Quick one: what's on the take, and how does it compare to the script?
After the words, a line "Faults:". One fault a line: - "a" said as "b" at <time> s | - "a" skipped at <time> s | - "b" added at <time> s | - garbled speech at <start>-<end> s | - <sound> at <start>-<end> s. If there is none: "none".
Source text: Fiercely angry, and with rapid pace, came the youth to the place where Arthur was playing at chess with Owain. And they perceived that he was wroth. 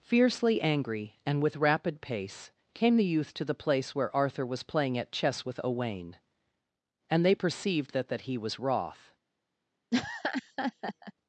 Fiercely angry, and with rapid pace, came the youth to the place where Arthur was playing at chess with Owain. And they perceived that that he was wroth.
Faults:
- "that" added at 8.1 s
- laugh at 9.9-11.1 s